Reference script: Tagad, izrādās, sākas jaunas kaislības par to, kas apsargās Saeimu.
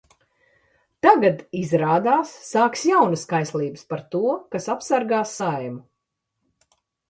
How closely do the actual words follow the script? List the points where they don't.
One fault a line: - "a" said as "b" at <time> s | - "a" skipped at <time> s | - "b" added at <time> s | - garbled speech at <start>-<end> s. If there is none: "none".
none